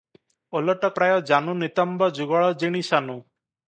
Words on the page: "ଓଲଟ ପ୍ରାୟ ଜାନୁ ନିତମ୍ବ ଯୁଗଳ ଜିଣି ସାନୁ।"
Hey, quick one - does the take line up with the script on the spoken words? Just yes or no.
yes